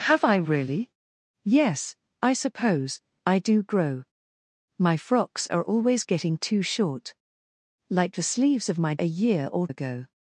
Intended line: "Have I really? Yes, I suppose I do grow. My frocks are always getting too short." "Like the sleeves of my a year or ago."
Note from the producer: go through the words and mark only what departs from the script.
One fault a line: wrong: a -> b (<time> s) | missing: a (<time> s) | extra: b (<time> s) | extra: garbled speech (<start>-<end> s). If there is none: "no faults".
no faults